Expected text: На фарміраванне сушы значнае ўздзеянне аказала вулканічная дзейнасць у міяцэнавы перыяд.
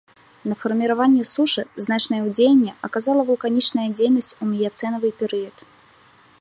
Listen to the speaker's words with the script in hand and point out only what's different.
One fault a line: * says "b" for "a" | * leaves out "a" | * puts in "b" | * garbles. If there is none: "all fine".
all fine